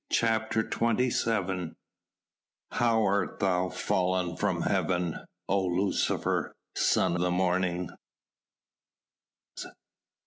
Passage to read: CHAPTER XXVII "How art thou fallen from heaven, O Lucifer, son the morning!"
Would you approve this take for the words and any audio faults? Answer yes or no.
yes